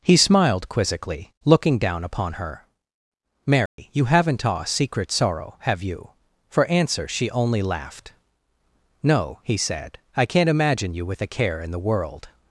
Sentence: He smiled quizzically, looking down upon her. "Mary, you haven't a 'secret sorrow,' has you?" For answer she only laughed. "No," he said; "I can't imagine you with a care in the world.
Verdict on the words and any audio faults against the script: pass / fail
fail